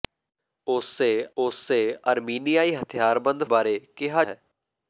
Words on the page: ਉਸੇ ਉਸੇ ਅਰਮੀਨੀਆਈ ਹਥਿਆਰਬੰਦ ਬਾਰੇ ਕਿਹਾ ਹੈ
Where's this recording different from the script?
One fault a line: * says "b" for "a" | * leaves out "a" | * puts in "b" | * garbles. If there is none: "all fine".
all fine